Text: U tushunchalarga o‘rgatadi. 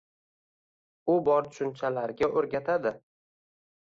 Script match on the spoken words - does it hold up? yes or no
no